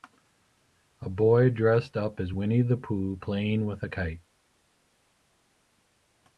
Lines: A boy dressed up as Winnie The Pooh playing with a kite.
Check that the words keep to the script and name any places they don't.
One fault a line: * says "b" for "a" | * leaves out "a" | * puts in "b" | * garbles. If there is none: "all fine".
all fine